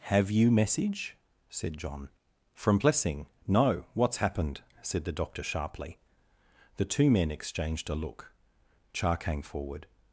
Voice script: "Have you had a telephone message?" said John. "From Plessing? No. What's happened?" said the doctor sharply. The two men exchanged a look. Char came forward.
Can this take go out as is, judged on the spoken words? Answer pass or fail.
fail